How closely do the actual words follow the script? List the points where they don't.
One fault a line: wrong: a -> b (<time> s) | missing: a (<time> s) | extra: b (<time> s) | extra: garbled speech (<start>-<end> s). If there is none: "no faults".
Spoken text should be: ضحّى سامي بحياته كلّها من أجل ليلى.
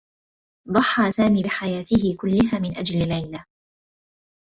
no faults